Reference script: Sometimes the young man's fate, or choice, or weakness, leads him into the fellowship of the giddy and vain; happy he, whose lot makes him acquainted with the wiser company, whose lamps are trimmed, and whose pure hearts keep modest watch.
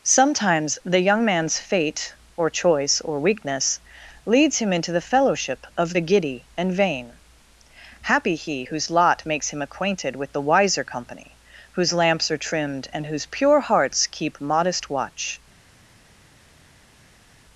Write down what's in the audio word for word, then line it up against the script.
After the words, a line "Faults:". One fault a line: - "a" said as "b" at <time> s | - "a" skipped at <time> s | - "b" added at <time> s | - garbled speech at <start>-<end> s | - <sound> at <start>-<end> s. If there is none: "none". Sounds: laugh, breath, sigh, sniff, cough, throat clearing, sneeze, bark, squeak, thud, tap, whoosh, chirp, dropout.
Sometimes the young man's fate, or choice, or weakness, leads him into the fellowship of the giddy and vain; happy he, whose lot makes him acquainted with the wiser company, whose lamps are trimmed, and whose pure hearts keep modest watch.
Faults:
none